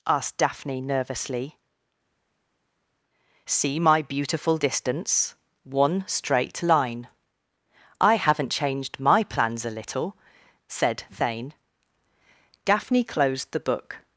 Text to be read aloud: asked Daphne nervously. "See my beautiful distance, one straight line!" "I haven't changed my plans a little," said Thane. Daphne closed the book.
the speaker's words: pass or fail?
pass